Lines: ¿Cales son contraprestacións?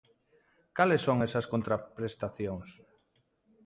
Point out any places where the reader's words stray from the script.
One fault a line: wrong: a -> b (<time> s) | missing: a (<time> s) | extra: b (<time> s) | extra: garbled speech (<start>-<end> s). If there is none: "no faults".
extra: esas (1.3 s)